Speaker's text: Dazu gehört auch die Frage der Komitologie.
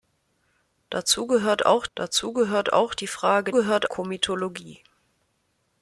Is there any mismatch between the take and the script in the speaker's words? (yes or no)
yes